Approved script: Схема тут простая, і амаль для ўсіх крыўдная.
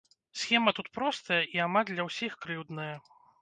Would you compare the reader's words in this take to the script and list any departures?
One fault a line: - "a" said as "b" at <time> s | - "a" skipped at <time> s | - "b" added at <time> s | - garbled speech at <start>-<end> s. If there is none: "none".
none